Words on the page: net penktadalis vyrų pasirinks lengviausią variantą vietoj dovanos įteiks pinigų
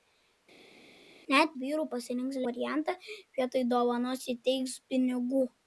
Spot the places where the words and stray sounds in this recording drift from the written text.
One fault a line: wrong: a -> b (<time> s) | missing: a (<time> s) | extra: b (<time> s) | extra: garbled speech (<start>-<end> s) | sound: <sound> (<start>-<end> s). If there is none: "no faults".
missing: penktadalis (1.5 s)
missing: lengviausią (2.4 s)